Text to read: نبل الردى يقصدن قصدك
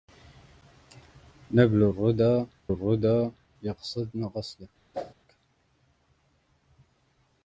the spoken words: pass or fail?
fail